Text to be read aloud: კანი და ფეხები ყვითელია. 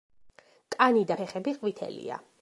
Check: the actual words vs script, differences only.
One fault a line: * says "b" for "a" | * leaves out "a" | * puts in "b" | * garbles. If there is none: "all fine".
all fine